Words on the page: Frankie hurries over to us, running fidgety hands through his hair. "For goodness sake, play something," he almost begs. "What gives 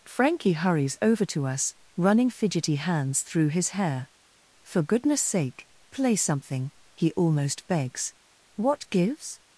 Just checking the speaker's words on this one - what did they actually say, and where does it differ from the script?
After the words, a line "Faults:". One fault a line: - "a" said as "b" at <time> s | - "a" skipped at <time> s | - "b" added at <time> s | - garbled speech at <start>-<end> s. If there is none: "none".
Frankie hurries over to us, running fidgety hands through his hair. "For goodness sake, play something," he almost begs. "What gives
Faults:
none